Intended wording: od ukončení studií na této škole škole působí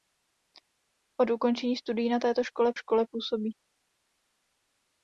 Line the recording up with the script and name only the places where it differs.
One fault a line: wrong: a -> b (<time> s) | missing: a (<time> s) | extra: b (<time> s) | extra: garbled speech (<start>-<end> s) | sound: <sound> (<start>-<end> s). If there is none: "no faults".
no faults